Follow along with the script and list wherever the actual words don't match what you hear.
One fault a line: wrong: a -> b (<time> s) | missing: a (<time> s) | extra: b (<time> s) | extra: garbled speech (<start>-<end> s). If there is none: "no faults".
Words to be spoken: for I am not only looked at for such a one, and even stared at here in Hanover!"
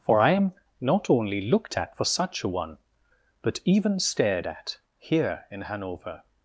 wrong: and -> but (3.4 s)